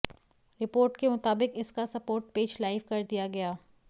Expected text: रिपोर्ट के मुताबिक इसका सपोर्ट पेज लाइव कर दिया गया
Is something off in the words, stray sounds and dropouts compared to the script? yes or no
no